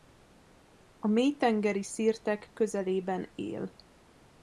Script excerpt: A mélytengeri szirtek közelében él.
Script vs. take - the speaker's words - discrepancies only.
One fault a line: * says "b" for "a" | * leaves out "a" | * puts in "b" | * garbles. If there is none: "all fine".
all fine